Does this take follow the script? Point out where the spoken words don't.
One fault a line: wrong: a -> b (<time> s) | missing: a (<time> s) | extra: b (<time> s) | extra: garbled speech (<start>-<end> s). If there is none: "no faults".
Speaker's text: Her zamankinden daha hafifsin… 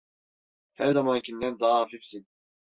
no faults